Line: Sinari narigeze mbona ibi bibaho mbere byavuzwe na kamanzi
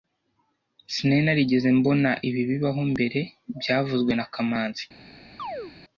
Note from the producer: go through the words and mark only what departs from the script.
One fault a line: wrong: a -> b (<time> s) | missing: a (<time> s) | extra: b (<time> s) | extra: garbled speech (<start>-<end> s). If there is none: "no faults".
no faults